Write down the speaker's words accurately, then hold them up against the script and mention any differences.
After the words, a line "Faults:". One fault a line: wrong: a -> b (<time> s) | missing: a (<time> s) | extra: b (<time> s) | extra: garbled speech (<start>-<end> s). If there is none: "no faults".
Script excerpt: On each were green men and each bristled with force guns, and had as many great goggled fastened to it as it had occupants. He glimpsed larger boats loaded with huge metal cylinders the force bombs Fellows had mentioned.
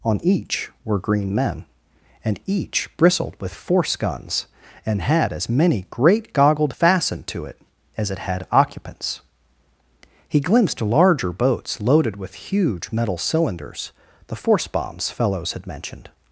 On each were green men and each bristled with force guns, and had as many great goggled fastened to it as it had occupants. He glimpsed larger boats loaded with huge metal cylinders the force bombs Fellows had mentioned.
Faults:
no faults